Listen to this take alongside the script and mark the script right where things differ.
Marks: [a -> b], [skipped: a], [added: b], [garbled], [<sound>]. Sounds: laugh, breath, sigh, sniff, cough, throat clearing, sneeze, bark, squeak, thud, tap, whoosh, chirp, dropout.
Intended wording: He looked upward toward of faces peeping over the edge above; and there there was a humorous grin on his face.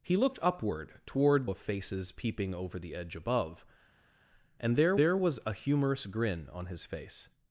He looked upward toward of faces peeping over the edge above; and there there was a humorous grin on his face.